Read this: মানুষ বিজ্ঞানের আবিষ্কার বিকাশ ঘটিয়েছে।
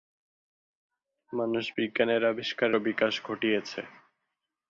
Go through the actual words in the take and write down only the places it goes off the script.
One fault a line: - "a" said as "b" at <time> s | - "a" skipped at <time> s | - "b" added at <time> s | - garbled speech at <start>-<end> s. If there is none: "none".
none